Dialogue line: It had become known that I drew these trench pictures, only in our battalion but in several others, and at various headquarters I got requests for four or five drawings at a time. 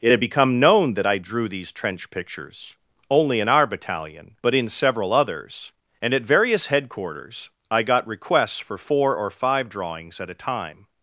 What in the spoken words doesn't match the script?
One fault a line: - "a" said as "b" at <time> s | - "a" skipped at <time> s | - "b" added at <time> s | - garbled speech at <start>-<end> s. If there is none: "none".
none